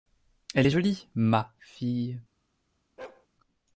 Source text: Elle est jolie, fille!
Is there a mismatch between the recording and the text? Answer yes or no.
yes